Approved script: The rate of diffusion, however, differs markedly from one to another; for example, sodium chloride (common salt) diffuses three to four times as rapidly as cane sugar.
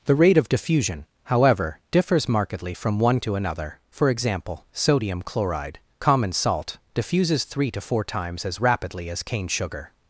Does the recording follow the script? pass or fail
pass